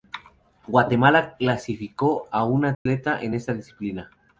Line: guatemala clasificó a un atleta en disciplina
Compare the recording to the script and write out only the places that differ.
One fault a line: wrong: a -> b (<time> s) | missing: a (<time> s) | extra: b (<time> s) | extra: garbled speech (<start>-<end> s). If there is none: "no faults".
extra: esta (3.3 s)